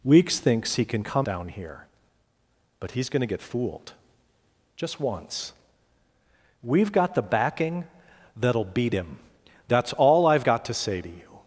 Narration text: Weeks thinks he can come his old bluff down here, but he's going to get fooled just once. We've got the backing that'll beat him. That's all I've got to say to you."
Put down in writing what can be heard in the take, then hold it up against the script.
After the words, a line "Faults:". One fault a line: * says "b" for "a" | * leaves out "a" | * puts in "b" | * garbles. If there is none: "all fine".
Weeks thinks he can come down here, but he's going to get fooled just once. We've got the backing that'll beat him. That's all I've got to say to you."
Faults:
* leaves out "his old bluff"